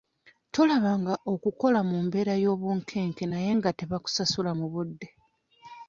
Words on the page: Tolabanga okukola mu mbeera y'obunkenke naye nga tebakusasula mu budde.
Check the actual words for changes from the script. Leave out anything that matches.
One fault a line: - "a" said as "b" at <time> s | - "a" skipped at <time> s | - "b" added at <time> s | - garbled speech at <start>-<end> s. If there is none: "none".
none